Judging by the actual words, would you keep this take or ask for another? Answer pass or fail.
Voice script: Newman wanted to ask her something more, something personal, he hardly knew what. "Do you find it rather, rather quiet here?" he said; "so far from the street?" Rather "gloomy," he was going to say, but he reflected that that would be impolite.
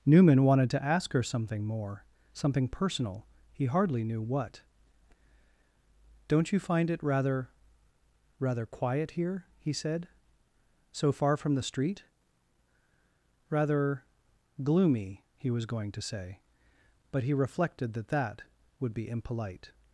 fail